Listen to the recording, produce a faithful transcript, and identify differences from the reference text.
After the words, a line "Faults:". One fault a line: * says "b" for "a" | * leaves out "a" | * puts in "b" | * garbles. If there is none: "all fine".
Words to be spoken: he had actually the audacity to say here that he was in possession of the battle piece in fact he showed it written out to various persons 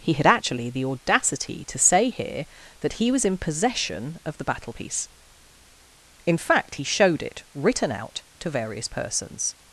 he had actually the audacity to say here that he was in possession of the battle piece in fact he showed it written out to various persons
Faults:
all fine